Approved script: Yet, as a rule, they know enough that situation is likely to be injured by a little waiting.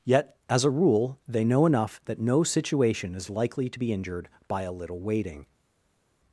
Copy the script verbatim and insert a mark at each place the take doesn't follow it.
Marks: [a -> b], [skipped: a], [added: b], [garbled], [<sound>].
Yet, as a rule, they know enough that [added: no] situation is likely to be injured by a little waiting.